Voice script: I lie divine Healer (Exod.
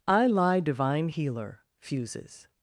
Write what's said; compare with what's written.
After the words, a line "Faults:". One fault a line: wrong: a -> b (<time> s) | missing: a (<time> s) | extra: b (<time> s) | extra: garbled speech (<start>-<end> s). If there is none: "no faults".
I lie divine Healer (Fuses.
Faults:
wrong: Exod -> Fuses (1.8 s)